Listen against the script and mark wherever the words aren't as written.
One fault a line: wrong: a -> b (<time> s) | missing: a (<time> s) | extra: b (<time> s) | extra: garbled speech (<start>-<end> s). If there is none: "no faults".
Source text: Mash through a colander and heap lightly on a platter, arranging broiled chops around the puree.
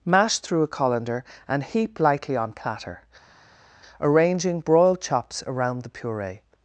missing: a (2.5 s)